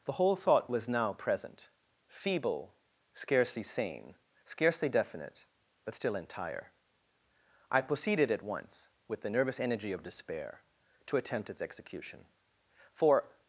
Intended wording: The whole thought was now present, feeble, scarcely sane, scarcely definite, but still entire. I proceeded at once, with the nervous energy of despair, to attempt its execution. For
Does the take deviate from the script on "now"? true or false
false